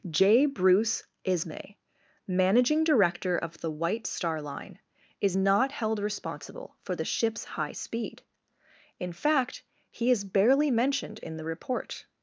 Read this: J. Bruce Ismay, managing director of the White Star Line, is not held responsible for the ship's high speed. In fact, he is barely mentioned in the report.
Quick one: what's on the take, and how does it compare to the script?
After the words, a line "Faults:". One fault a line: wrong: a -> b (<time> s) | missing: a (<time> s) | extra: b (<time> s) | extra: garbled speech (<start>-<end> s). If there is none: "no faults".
J. Bruce Ismay, managing director of the White Star Line, is not held responsible for the ship's high speed. In fact, he is barely mentioned in the report.
Faults:
no faults